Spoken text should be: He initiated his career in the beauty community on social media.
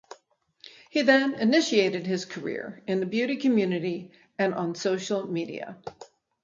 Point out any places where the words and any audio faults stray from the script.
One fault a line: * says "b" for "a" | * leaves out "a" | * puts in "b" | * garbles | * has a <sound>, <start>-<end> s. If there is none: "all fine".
* puts in "then"
* puts in "and"